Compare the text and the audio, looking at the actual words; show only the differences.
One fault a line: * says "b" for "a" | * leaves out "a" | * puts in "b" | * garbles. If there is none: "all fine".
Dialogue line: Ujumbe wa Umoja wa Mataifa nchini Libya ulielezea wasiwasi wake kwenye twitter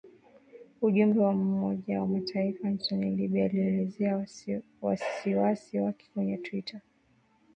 all fine